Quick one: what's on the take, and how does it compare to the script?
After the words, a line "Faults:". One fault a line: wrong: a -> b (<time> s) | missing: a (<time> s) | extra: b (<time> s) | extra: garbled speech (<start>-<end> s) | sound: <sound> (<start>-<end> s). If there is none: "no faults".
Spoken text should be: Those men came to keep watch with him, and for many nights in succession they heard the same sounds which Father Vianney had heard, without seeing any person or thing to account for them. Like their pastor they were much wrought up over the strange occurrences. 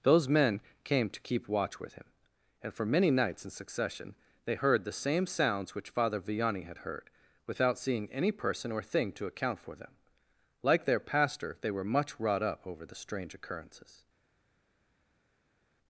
Those men came to keep watch with him, and for many nights in succession they heard the same sounds which Father Vianney had heard, without seeing any person or thing to account for them. Like their pastor they were much wrought up over the strange occurrences.
Faults:
no faults